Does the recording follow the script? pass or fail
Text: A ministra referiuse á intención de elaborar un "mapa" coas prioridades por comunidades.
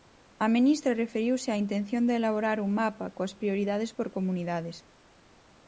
pass